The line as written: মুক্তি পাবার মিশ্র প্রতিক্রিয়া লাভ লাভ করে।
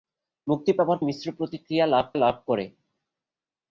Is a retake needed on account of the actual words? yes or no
no